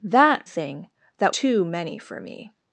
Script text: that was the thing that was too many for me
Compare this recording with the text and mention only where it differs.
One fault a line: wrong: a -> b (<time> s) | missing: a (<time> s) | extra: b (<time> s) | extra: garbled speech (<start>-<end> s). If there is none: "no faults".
missing: was the (0.5 s)
missing: was (1.4 s)